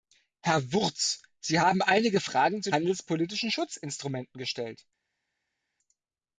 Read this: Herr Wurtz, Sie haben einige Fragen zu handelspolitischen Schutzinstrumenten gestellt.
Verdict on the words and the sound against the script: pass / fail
pass